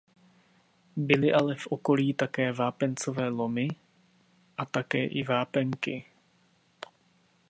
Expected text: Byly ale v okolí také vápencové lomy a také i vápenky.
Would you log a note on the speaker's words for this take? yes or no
no